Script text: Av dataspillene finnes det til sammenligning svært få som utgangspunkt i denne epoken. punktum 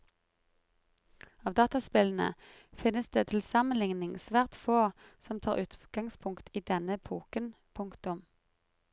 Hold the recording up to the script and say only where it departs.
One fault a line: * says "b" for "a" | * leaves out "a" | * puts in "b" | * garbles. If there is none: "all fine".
* puts in "tar"